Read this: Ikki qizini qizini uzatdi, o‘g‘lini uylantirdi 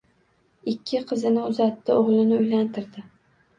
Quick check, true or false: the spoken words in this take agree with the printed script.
false